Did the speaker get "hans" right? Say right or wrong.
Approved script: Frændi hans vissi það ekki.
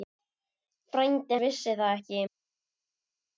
wrong